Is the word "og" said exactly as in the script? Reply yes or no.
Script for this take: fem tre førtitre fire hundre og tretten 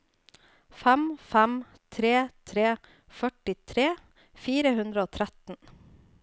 yes